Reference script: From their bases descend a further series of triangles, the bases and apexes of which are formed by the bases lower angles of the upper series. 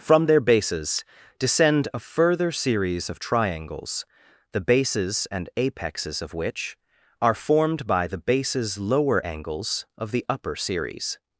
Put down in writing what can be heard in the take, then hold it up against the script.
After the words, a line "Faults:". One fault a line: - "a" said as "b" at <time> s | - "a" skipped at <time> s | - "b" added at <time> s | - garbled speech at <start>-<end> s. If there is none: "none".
From their bases descend a further series of triangles, the bases and apexes of which are formed by the bases lower angles of the upper series.
Faults:
none